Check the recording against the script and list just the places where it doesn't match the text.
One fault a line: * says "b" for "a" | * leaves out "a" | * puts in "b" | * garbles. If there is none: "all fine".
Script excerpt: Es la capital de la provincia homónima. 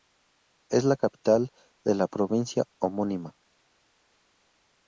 all fine